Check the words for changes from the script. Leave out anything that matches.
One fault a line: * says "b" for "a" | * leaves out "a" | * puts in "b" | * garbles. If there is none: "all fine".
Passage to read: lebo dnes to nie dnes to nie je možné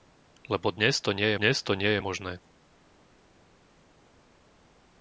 all fine